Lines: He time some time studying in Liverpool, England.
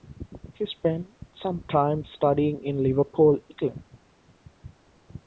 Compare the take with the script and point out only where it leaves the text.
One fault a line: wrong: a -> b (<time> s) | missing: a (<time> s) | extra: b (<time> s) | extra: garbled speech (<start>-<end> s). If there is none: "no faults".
wrong: time -> spent (0.7 s)